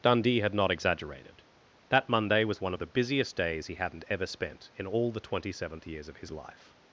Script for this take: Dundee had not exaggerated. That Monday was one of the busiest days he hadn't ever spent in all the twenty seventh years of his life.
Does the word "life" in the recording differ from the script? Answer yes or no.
no